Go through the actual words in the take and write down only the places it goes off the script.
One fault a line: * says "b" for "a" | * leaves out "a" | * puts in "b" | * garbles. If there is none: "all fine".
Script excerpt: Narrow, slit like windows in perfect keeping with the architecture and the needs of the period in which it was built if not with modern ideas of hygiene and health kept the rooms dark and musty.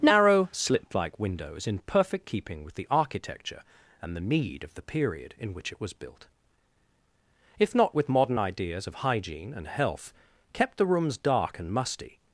* says "need" for "needs"